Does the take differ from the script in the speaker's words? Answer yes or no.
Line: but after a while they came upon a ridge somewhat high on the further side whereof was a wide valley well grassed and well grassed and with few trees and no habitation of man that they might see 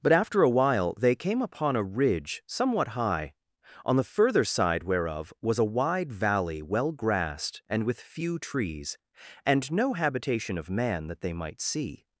yes